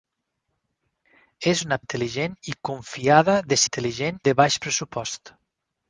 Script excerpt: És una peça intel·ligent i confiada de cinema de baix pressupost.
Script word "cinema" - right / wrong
wrong